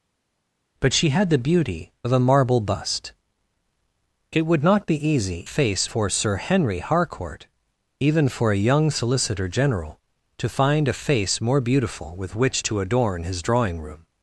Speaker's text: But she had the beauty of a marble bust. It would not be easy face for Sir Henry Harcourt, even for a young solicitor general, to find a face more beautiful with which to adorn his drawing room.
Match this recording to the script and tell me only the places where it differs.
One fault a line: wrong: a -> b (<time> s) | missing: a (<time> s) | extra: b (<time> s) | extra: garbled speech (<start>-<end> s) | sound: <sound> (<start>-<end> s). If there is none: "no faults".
no faults